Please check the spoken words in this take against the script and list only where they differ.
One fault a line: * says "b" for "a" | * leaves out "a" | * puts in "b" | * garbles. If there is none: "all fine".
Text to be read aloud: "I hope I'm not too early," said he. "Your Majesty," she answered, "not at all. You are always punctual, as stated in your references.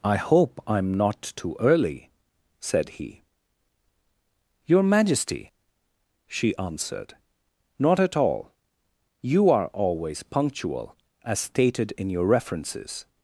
all fine